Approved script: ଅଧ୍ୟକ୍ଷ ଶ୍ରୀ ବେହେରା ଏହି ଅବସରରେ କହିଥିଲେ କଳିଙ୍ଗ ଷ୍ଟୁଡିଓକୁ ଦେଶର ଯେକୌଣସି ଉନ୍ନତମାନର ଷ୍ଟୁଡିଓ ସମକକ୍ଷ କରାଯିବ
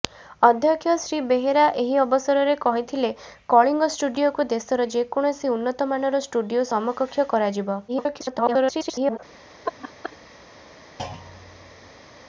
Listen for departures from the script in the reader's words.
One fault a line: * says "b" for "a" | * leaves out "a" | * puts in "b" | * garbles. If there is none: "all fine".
* garbles